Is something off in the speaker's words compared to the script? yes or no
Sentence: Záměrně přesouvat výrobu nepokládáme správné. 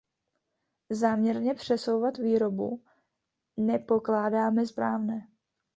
no